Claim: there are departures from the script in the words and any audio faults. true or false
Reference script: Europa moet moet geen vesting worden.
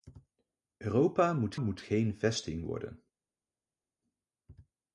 false